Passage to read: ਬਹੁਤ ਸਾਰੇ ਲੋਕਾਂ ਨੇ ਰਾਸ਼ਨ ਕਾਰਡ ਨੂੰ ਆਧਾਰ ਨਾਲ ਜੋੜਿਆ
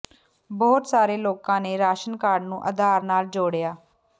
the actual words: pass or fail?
pass